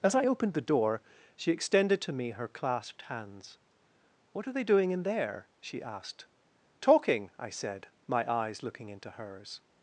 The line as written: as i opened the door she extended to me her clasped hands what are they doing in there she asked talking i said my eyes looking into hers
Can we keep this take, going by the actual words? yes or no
yes